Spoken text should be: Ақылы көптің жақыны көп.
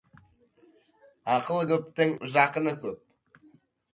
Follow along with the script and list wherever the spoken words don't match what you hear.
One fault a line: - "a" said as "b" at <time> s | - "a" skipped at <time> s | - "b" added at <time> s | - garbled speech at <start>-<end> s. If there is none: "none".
none